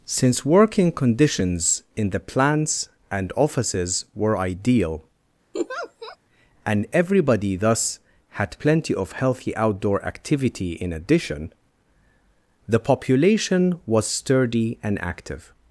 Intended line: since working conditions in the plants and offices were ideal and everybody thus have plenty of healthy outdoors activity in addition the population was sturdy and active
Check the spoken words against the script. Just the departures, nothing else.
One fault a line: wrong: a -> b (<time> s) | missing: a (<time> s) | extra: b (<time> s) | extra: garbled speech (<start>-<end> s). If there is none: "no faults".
wrong: have -> had (8.3 s)
wrong: outdoors -> outdoor (9.6 s)